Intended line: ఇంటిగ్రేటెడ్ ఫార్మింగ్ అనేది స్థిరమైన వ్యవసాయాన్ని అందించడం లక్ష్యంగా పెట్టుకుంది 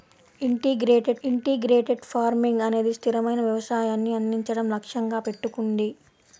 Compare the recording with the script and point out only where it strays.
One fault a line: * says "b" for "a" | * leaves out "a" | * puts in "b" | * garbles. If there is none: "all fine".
* puts in "ఇంటిగ్రేటెడ్"